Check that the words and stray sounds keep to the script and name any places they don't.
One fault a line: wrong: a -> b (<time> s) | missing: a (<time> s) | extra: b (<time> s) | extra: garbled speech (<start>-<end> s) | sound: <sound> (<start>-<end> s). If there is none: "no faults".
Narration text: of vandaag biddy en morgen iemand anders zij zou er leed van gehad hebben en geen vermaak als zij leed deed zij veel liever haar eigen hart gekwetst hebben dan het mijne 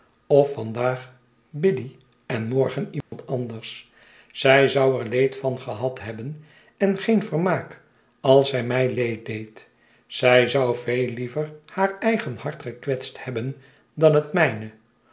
sound: dropout (3.0-3.1 s)
extra: mij (8.6 s)
extra: zou (10.5 s)